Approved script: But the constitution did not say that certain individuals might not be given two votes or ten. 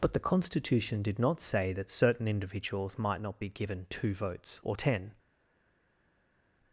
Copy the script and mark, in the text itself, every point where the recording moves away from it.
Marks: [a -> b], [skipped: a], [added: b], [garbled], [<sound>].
But the constitution did not say that certain individuals might not be given two votes or ten.